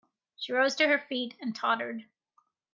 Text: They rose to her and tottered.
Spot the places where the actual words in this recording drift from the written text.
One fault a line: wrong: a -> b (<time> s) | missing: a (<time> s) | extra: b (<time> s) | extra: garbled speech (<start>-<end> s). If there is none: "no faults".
wrong: They -> She (0.3 s)
extra: feet (1.0 s)